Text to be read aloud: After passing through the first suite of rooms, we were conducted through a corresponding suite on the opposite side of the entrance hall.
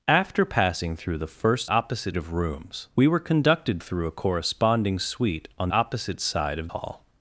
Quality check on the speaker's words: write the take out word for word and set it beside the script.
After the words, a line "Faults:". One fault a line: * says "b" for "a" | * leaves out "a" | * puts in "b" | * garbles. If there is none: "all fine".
After passing through the first opposite of rooms, we were conducted through a corresponding suite on opposite side of hall.
Faults:
* says "opposite" for "suite"
* leaves out "the"
* leaves out "the entrance"